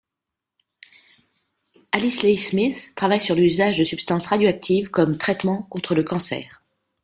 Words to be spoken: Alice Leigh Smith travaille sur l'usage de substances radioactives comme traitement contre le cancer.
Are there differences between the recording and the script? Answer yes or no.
no